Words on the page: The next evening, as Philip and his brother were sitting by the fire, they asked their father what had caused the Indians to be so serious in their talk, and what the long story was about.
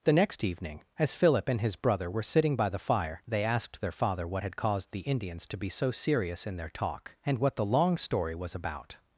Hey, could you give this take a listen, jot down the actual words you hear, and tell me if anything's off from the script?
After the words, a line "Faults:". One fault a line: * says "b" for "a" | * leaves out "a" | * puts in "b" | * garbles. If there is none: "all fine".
The next evening, as Philip and his brother were sitting by the fire, they asked their father what had caused the Indians to be so serious in their talk, and what the long story was about.
Faults:
all fine